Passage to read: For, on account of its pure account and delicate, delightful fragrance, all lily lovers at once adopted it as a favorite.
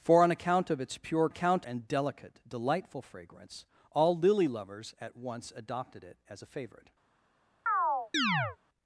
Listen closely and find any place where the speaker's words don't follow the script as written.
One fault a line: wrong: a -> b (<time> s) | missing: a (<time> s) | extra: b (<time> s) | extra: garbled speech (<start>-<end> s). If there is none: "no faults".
no faults